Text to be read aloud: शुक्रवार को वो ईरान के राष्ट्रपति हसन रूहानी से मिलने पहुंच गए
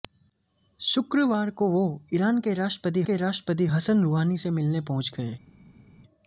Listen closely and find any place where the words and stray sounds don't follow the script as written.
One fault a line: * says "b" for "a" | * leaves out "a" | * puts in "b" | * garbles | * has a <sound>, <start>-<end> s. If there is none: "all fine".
* puts in "के राष्ट्रपति"